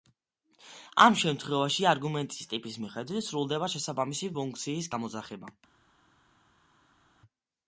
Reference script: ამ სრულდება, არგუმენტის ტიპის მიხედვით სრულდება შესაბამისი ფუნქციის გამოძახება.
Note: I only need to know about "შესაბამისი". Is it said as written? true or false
true